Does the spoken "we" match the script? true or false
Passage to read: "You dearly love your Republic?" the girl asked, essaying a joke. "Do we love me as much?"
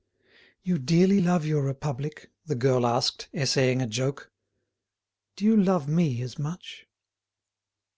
false